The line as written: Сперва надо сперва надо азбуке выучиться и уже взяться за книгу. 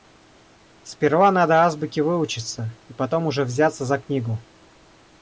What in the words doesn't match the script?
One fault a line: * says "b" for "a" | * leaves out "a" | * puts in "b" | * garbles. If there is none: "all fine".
* leaves out "сперва надо"
* puts in "потом"